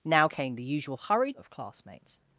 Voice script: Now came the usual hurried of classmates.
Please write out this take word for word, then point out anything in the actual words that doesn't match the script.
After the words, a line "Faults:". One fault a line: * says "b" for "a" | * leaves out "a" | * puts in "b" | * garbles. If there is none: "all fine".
Now came the usual hurried of classmates.
Faults:
all fine